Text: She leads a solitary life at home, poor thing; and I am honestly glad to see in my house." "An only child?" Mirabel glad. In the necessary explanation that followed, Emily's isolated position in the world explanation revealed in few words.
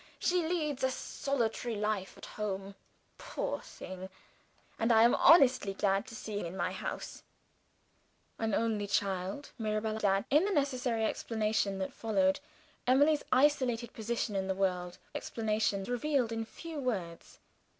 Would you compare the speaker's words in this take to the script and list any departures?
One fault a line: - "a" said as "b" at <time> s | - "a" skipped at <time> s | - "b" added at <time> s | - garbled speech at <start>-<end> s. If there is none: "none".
none